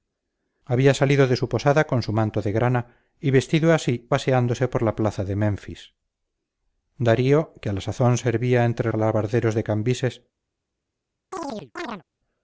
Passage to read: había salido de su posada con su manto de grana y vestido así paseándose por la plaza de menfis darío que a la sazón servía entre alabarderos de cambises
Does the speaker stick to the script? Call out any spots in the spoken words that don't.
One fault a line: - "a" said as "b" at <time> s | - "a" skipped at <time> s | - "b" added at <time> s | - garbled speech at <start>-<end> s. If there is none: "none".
none